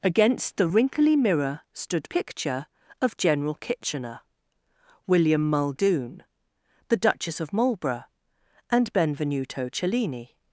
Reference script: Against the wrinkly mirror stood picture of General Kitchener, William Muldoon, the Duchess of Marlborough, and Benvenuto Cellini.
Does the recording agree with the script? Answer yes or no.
yes